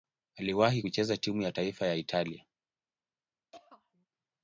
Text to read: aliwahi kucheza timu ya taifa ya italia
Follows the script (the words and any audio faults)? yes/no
no